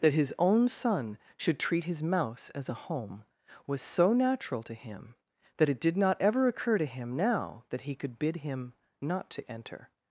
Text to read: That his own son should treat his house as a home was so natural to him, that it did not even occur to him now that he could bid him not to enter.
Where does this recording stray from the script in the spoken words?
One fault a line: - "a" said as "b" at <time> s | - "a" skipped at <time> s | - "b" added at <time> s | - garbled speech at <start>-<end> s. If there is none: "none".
- "house" said as "mouse" at 2.0 s
- "even" said as "ever" at 6.2 s